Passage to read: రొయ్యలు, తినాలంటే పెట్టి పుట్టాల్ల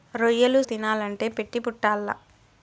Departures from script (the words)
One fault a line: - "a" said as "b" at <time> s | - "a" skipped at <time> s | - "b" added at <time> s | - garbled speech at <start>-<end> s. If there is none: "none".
none